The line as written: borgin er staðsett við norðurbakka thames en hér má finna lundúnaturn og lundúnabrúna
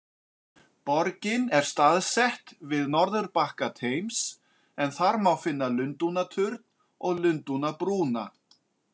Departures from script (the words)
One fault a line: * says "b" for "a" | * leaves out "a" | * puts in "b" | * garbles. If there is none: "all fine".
* says "þar" for "hér"